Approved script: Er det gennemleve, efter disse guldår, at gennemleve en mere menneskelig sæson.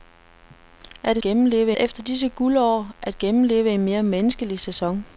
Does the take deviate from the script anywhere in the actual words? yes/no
no